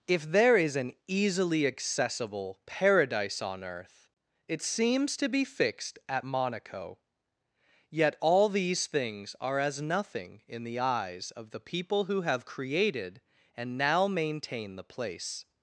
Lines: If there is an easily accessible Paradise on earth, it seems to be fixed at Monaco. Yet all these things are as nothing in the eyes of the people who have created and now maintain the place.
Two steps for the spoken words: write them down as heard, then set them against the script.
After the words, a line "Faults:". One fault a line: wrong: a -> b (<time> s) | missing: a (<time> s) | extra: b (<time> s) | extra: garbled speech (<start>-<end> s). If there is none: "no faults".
If there is an easily accessible Paradise on earth, it seems to be fixed at Monaco. Yet all these things are as nothing in the eyes of the people who have created and now maintain the place.
Faults:
no faults